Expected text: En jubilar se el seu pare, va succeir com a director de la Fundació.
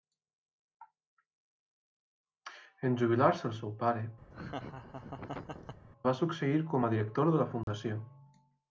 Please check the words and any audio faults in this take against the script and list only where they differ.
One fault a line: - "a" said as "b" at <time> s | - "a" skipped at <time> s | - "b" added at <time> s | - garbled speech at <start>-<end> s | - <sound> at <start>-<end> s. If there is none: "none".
- laugh at 4.3-5.9 s
- dropout at 7.6-7.7 s